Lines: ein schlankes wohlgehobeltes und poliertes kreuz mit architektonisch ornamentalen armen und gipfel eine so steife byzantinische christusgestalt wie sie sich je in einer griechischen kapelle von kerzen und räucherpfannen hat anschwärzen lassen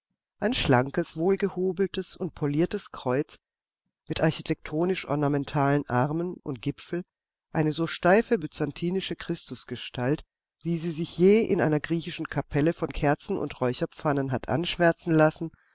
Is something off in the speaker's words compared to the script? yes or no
no